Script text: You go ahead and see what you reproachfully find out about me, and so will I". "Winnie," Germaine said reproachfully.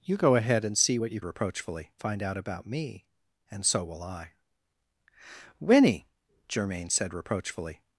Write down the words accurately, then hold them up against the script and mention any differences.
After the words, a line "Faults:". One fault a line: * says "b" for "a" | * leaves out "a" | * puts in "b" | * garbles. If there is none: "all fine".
You go ahead and see what you reproachfully find out about me, and so will I". "Winnie," Germaine said reproachfully.
Faults:
all fine